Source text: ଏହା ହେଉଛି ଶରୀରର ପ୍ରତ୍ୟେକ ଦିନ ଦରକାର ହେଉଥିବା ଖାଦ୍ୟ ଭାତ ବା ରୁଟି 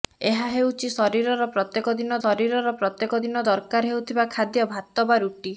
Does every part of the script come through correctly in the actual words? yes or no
no